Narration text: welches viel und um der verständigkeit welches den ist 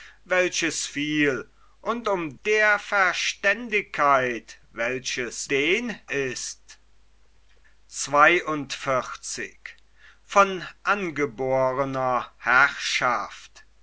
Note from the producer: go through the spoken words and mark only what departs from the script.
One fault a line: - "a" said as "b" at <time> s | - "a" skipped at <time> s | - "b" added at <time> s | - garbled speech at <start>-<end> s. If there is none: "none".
none